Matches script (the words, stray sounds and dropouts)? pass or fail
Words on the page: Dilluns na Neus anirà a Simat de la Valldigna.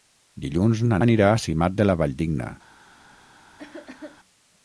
fail